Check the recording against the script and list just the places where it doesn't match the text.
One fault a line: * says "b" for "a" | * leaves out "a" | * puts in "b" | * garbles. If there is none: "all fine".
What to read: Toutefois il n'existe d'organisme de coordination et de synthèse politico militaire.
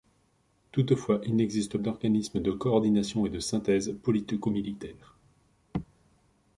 all fine